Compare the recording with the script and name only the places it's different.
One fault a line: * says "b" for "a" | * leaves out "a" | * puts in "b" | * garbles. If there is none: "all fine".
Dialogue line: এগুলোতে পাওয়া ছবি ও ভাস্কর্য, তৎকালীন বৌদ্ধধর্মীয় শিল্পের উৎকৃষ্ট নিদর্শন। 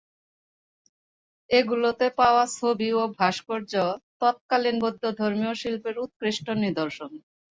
all fine